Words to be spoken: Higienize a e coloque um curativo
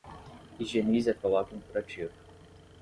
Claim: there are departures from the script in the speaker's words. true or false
false